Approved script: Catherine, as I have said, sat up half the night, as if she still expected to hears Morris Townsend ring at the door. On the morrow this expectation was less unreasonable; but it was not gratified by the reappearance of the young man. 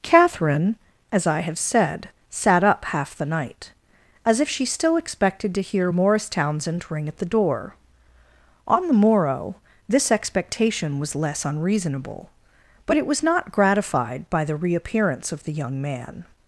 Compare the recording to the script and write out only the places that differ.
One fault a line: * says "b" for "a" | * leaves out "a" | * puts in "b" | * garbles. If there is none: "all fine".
* says "hear" for "hears"